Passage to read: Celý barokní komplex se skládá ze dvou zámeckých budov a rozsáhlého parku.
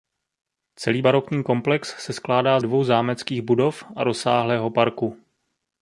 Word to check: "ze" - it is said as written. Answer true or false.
false